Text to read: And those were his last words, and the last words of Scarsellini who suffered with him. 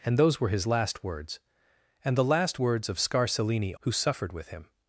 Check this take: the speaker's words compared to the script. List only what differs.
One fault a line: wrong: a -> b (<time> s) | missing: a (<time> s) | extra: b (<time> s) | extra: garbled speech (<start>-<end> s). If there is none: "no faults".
no faults